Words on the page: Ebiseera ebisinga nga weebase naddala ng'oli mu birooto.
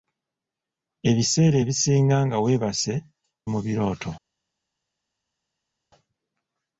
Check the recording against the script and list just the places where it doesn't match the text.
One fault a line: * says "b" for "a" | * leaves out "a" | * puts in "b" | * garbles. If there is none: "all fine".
* leaves out "naddala ng'oli"